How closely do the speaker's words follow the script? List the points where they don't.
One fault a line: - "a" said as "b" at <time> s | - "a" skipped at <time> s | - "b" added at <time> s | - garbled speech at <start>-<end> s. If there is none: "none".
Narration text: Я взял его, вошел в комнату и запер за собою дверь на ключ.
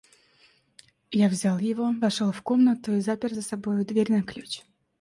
none